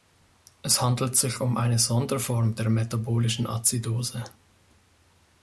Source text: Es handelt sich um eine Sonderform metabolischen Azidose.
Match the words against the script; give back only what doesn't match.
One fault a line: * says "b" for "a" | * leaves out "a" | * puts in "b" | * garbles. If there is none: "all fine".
* puts in "der"